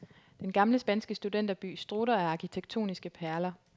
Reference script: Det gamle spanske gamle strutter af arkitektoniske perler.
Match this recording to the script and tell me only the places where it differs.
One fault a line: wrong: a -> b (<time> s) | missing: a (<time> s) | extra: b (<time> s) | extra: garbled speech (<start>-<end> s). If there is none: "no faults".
wrong: Det -> Den (0.4 s)
wrong: gamle -> studenterby (1.2 s)